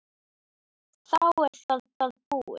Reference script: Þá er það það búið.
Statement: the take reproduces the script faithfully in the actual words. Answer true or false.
true